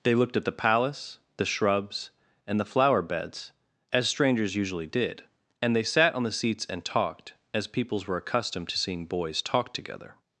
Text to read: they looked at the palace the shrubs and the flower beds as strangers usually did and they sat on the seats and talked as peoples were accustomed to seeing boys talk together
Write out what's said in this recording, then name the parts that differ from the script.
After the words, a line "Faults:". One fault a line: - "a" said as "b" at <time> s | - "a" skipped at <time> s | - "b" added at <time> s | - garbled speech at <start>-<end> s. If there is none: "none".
they looked at the palace the shrubs and the flower beds as strangers usually did and they sat on the seats and talked as peoples were accustomed to seeing boys talk together
Faults:
none